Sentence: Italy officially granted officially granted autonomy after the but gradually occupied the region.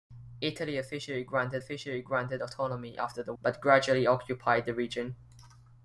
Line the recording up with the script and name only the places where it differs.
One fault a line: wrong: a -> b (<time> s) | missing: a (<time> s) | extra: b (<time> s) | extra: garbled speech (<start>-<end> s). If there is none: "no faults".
no faults